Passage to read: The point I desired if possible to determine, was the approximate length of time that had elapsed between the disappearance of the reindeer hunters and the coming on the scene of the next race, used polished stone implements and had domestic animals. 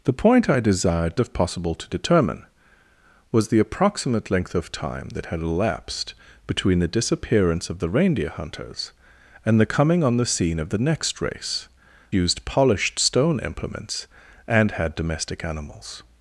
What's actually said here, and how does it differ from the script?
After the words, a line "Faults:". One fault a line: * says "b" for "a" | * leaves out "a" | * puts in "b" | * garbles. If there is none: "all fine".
The point I desired if possible to determine, was the approximate length of time that had elapsed between the disappearance of the reindeer hunters and the coming on the scene of the next race, used polished stone implements and had domestic animals.
Faults:
all fine